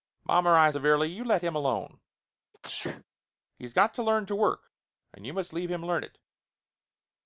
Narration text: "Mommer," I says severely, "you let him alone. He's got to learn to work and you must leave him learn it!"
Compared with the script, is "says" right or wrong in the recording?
wrong